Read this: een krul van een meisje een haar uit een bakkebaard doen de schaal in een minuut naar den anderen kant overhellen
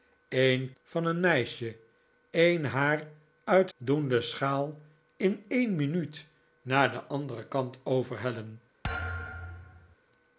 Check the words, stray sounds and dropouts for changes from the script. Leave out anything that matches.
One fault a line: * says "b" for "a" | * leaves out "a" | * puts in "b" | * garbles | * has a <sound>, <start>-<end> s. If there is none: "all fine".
* leaves out "krul"
* leaves out "een bakkebaard"
* has a thud, 8.8-10.0 s